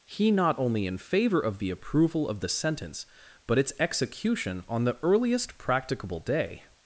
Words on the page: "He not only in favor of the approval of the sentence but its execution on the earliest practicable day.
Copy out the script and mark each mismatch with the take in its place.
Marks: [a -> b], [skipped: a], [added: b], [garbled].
"He not only in favor of the approval of the sentence but its execution on the earliest practicable day.